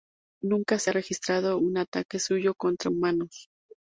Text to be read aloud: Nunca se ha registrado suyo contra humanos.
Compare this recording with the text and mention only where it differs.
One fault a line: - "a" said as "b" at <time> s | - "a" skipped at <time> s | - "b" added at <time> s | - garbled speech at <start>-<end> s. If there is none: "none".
- "un ataque" added at 1.6 s